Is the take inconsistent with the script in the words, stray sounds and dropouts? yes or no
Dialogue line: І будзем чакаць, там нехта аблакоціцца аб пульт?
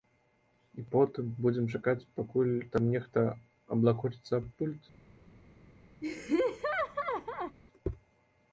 yes